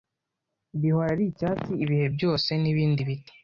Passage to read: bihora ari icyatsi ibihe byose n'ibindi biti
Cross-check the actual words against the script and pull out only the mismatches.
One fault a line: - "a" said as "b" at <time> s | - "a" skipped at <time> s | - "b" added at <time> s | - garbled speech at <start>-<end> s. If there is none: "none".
none